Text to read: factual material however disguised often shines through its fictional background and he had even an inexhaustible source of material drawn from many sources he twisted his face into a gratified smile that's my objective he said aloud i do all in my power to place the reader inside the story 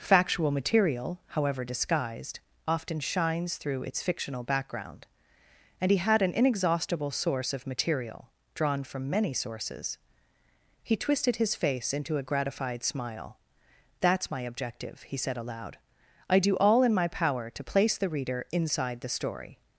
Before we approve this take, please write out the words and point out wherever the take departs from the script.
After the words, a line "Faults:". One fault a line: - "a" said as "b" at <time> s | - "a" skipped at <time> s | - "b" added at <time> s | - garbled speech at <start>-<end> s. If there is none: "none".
factual material however disguised often shines through its fictional background and he had an inexhaustible source of material drawn from many sources he twisted his face into a gratified smile that's my objective he said aloud i do all in my power to place the reader inside the story
Faults:
- "even" skipped at 6.2 s